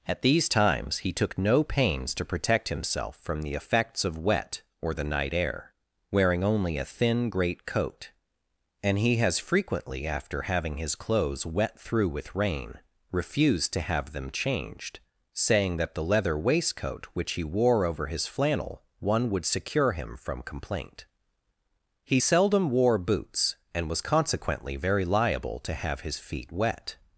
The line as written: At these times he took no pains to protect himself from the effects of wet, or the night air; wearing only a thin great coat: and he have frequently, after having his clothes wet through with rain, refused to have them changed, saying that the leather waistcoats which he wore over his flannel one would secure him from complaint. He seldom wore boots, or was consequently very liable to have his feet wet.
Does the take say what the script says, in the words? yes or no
no